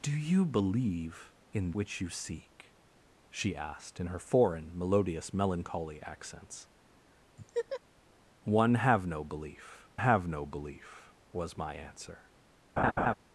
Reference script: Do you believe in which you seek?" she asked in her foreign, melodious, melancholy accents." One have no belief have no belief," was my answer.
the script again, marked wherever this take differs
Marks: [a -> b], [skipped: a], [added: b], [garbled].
Do you believe in which you seek?" she asked in her foreign, melodious, melancholy accents." One have no belief have no belief," was my answer.